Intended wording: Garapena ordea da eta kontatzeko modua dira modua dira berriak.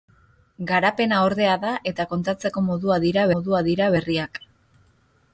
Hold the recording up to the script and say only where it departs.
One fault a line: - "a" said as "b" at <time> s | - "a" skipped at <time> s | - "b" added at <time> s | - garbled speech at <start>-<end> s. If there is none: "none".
none